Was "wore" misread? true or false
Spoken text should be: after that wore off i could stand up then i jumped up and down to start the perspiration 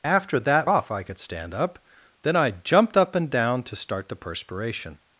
true